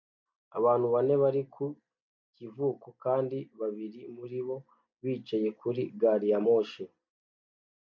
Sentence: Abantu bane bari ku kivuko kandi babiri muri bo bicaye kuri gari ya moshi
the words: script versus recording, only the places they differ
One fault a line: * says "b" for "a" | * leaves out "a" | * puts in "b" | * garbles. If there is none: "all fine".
all fine